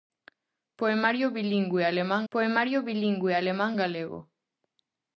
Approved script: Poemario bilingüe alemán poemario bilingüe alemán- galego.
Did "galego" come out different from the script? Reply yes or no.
no